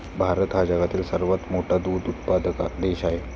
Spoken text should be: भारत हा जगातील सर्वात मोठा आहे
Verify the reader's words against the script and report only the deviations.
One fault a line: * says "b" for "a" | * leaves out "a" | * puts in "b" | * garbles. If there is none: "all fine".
* puts in "दूध उत्पादक देश"